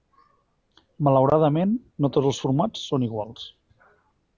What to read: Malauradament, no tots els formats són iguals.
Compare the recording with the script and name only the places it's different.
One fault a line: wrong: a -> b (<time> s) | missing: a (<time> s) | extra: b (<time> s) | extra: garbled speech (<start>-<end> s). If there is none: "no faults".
no faults